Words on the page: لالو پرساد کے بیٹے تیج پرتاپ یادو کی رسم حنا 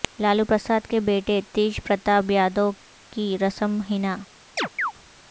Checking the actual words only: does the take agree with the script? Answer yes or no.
yes